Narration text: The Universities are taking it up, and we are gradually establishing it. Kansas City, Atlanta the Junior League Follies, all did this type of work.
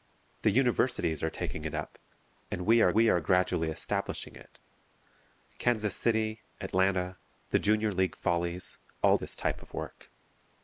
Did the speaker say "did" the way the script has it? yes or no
no